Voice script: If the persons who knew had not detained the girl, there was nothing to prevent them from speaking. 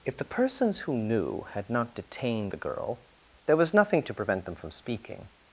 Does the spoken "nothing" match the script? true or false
true